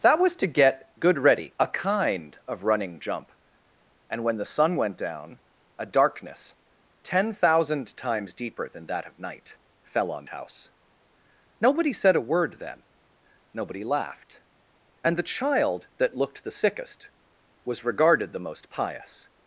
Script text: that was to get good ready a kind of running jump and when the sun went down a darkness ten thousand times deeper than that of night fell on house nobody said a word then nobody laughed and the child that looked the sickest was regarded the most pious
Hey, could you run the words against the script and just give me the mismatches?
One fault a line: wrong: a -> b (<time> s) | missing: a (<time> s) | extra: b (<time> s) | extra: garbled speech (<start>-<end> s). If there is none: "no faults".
no faults